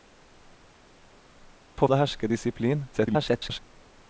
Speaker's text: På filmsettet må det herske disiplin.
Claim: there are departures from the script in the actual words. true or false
true